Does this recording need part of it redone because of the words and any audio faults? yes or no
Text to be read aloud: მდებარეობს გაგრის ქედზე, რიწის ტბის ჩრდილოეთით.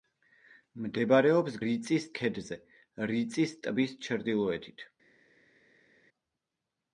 yes